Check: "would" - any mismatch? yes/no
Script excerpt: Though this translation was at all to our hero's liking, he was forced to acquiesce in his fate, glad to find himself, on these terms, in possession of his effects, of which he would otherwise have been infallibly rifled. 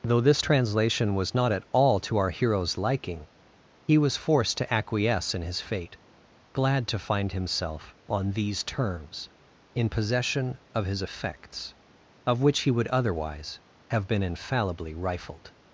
no